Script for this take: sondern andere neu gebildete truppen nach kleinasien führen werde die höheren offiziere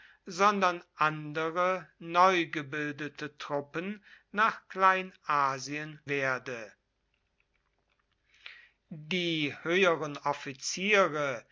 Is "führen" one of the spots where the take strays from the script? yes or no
yes